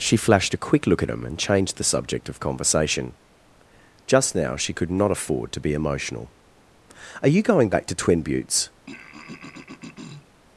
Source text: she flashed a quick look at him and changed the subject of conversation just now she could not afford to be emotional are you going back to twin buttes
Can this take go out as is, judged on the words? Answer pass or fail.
pass